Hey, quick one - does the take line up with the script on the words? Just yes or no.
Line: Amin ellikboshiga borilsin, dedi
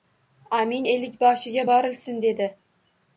yes